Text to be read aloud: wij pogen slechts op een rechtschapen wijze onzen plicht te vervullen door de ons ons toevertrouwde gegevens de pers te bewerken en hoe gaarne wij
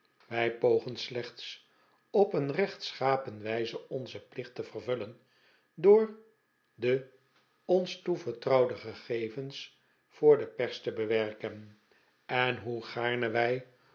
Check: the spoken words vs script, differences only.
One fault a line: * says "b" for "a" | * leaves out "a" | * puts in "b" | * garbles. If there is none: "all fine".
* leaves out "ons"
* puts in "voor"